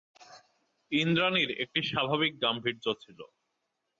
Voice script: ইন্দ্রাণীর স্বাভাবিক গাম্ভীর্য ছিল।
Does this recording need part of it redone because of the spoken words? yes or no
yes